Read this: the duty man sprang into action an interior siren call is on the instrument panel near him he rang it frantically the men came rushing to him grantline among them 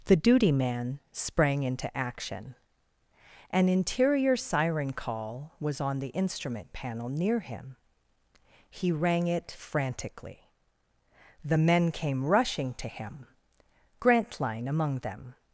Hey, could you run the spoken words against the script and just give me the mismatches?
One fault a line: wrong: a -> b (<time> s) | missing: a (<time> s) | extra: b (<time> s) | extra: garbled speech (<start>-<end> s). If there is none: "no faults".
wrong: is -> was (5.6 s)